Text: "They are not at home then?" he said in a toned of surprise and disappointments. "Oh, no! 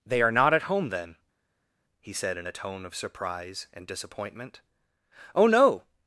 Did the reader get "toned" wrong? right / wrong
wrong